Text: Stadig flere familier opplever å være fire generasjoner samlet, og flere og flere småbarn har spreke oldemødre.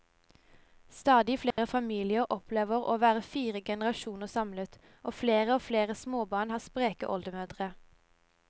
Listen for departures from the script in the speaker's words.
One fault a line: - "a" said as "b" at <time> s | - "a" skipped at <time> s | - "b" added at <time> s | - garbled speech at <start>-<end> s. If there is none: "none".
none